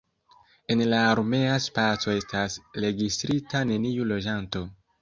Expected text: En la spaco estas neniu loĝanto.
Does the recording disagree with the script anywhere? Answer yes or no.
yes